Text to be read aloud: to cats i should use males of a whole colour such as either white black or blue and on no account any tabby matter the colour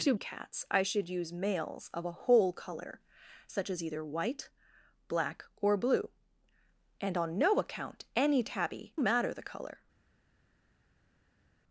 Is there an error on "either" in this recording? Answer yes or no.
no